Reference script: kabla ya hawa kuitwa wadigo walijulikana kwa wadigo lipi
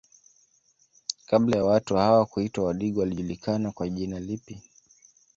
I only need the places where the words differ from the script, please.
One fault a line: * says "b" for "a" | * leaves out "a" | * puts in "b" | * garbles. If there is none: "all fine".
* puts in "watu"
* says "jina" for "wadigo"